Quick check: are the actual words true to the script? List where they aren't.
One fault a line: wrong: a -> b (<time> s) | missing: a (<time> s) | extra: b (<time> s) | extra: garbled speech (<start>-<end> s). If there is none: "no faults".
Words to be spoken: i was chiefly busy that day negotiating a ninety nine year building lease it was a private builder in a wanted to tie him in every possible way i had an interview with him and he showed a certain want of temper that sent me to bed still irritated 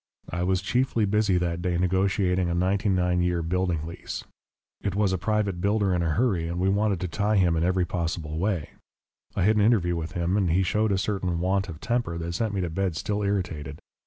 extra: hurry and we (6.2 s)